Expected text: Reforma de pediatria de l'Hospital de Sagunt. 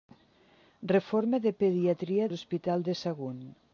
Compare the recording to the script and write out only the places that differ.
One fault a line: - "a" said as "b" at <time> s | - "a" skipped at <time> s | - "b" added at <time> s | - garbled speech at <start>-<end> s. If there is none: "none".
- "de" skipped at 2.3 s